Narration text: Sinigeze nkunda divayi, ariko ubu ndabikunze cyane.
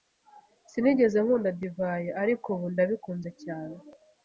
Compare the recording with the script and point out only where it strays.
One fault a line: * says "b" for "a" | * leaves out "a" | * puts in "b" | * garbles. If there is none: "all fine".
all fine